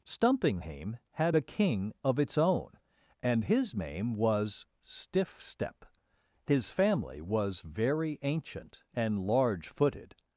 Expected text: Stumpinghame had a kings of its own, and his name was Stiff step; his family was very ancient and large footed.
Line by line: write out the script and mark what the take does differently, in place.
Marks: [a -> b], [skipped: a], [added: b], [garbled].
Stumpinghame had a [kings -> king] of its own, and his name was Stiff step; his family was very ancient and large footed.